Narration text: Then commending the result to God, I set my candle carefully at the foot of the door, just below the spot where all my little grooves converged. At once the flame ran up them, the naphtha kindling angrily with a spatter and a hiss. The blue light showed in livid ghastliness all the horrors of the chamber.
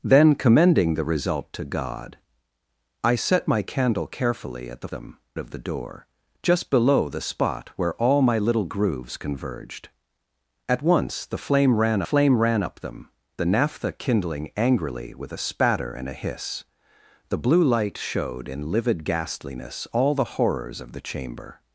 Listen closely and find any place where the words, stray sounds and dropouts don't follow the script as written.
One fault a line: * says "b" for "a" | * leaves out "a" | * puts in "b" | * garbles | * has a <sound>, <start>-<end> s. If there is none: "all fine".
* says "them" for "foot"
* puts in "flame ran"